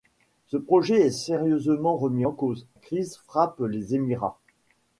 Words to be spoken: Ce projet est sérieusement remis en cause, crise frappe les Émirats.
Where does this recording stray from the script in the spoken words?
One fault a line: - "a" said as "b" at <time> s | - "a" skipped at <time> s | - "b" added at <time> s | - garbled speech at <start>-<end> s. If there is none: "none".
none